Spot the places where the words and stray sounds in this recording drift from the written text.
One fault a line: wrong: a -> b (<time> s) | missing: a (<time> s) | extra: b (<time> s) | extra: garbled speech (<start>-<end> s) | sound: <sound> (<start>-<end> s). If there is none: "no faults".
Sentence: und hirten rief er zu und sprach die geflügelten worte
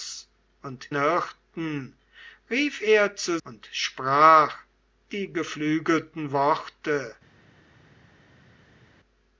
no faults